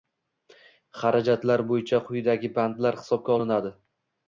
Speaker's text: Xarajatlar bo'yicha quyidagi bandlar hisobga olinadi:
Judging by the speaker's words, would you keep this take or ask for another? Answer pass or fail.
pass